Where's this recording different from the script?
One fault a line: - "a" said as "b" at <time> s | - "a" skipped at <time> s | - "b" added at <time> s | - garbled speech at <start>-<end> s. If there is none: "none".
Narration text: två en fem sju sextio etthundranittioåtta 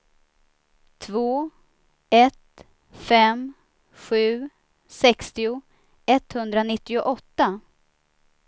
- "en" said as "ett" at 2.1 s